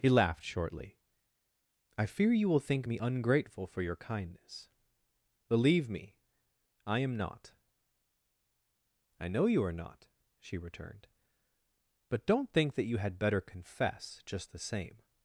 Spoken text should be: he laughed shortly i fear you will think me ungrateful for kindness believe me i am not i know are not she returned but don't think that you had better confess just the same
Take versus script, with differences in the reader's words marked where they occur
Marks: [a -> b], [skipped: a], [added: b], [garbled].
he laughed shortly i fear you will think me ungrateful for [added: your] kindness believe me i am not i know [added: you] are not she returned but don't think that you had better confess just the same